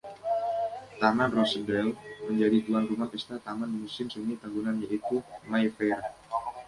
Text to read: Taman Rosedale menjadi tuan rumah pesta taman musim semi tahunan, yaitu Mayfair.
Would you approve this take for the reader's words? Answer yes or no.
yes